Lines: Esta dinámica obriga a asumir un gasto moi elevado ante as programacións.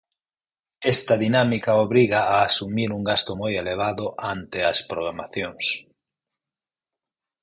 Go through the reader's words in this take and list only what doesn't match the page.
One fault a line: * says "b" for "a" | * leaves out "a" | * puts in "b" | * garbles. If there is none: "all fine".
all fine